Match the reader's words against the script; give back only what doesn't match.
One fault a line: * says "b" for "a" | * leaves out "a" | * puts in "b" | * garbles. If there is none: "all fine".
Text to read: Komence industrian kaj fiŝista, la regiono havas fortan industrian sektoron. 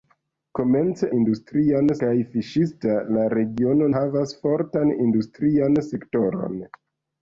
all fine